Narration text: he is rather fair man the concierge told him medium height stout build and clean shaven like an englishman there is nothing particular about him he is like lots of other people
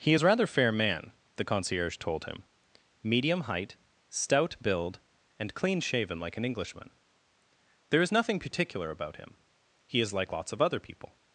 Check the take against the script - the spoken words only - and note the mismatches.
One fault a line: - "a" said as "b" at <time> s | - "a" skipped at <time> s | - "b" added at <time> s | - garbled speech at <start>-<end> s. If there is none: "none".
none